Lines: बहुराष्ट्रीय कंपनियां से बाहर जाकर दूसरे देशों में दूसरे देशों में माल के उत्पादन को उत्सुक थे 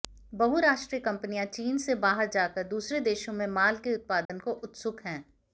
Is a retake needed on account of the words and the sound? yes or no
yes